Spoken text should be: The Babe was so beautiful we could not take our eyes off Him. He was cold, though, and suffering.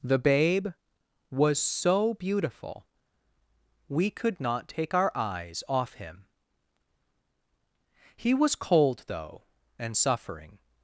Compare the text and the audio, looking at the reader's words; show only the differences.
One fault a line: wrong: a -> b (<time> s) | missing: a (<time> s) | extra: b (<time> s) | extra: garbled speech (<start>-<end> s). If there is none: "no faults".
no faults